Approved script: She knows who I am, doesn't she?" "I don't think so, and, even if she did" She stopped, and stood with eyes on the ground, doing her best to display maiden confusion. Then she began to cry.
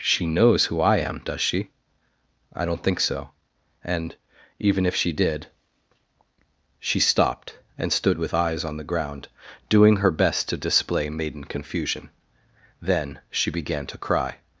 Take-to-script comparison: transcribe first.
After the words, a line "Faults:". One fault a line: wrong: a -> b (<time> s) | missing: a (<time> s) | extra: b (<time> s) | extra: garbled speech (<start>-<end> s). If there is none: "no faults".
She knows who I am, does she?" "I don't think so, and, even if she did" She stopped, and stood with eyes on the ground, doing her best to display maiden confusion. Then she began to cry.
Faults:
wrong: doesn't -> does (1.2 s)